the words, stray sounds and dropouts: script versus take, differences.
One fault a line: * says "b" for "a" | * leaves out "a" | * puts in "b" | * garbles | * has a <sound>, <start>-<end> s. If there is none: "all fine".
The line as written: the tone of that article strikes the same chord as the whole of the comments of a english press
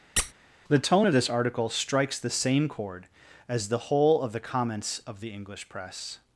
* has a squeak, 0.2-0.3 s
* says "this" for "that"
* says "the" for "a"